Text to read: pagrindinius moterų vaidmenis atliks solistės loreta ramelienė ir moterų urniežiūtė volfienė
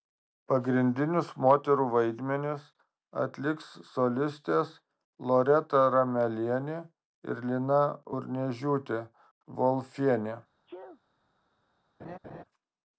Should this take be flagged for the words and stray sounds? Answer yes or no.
yes